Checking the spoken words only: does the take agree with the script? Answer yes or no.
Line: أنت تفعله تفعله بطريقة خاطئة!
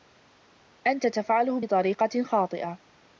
no